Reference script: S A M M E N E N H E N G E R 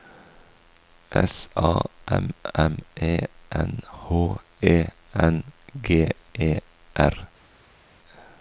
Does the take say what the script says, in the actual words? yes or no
no